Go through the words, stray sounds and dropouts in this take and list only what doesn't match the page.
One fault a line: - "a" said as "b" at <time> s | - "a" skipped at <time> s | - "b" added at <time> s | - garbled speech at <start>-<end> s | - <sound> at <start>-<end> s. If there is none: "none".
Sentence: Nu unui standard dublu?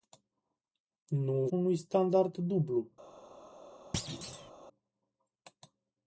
- thud at 3.9-4.5 s